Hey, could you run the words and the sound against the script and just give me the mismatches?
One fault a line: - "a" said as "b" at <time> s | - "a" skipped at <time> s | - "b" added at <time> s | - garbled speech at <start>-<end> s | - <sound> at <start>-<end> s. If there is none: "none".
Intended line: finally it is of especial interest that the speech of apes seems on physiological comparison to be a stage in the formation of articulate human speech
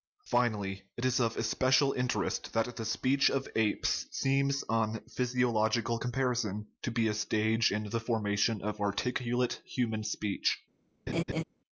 - laugh at 11.1-11.4 s